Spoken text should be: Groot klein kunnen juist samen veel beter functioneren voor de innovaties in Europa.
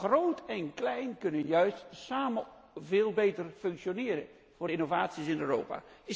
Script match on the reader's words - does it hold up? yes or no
no